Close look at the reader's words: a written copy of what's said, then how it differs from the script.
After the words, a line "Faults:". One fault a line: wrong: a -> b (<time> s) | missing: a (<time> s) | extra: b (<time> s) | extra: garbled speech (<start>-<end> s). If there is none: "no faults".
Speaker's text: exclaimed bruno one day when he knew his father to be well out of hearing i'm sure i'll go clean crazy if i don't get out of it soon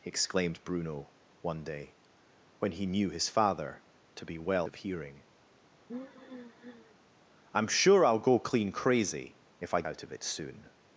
exclaimed bruno one day when he knew his father to be well of hearing i'm sure i'll go clean crazy if i out of it soon
Faults:
missing: out (4.7 s)
missing: don't get (9.8 s)